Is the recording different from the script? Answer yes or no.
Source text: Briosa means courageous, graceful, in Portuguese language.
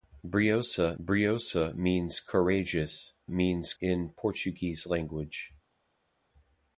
yes